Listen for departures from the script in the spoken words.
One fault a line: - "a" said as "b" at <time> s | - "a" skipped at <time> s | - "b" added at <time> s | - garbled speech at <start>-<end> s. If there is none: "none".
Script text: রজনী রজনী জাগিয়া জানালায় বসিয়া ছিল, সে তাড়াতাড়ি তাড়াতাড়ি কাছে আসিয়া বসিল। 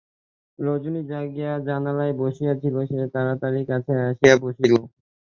- "রজনী" skipped at 1.0 s
- "তাড়াতাড়ি" skipped at 3.6 s